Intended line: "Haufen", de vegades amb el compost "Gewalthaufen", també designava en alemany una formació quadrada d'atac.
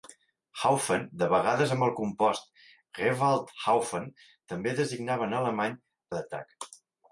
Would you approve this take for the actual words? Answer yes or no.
no